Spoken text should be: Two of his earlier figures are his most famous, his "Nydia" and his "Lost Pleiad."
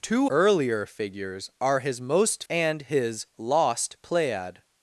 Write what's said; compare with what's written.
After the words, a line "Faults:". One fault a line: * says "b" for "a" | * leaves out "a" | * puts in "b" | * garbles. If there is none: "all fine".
Two earlier figures are his most" and his "Lost Pleiad."
Faults:
* leaves out "of his"
* leaves out "famous his Nydia"